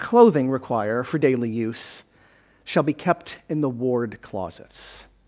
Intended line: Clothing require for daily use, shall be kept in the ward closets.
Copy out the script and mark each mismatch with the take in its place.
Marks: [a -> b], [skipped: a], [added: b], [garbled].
Clothing require for daily use, shall be kept in the ward closets.